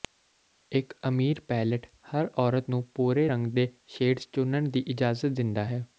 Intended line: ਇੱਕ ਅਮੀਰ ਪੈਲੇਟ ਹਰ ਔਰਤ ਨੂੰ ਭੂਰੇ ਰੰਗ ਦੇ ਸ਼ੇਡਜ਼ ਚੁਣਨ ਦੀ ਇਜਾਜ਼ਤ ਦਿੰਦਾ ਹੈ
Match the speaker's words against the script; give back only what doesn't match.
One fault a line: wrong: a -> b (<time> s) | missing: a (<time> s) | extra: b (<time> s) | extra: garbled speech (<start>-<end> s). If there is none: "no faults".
no faults